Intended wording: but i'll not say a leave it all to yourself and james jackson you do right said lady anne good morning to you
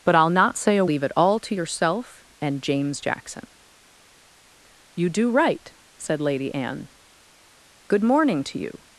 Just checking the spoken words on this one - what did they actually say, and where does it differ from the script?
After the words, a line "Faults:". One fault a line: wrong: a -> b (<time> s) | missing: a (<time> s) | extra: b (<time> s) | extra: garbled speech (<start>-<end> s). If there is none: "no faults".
but i'll not say a leave it all to yourself and james jackson you do right said lady anne good morning to you
Faults:
no faults